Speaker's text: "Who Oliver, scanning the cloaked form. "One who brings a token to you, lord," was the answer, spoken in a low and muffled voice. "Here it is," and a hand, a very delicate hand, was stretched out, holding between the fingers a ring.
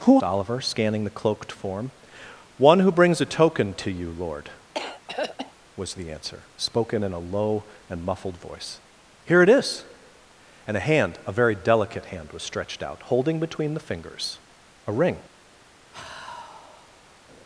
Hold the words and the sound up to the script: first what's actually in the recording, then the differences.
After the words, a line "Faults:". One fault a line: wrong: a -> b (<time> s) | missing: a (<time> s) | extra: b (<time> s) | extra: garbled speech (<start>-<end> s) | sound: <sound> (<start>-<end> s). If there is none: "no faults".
"Who Oliver, scanning the cloaked form. "One who brings a token to you, lord," was the answer, spoken in a low and muffled voice. "Here it is," and a hand, a very delicate hand, was stretched out, holding between the fingers a ring.
Faults:
sound: throat clearing (4.7-5.5 s)
sound: sigh (15.9-17.2 s)